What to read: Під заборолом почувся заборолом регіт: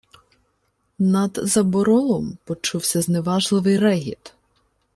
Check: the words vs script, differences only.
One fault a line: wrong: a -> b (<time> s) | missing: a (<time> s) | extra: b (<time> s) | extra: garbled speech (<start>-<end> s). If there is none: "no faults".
wrong: Під -> Над (1.0 s)
wrong: заборолом -> зневажливий (3.0 s)